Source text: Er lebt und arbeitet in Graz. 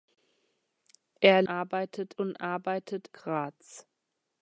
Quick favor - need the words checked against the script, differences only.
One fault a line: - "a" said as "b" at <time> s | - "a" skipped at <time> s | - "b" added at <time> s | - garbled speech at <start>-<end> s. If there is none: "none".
- "lebt" said as "arbeitet" at 1.5 s
- "in" skipped at 3.1 s